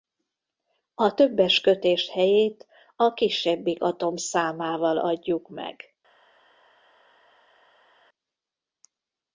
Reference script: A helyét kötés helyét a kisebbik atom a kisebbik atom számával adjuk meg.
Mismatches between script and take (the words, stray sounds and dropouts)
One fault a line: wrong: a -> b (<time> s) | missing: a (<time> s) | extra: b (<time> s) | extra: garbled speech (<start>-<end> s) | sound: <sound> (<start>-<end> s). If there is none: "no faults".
wrong: helyét -> többes (1.1 s)
missing: a kisebbik atom (4.2 s)